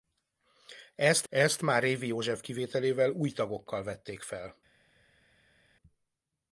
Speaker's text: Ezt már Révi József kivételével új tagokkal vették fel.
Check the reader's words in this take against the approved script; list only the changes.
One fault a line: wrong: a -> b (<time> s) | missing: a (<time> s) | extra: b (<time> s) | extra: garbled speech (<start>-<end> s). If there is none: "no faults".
extra: ezt (1.3 s)